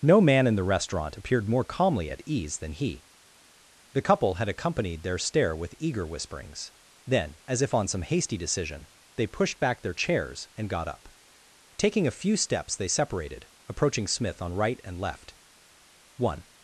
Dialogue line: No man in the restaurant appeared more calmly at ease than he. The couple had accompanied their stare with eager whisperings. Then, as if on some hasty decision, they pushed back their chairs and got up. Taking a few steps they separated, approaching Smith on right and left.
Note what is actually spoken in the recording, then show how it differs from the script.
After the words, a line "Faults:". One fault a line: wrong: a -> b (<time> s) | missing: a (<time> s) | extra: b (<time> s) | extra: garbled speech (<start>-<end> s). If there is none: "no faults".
No man in the restaurant appeared more calmly at ease than he. The couple had accompanied their stare with eager whisperings. Then, as if on some hasty decision, they pushed back their chairs and got up. Taking a few steps they separated, approaching Smith on right and left. One
Faults:
extra: One (16.2 s)